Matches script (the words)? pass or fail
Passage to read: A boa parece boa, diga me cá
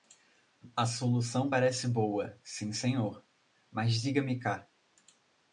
fail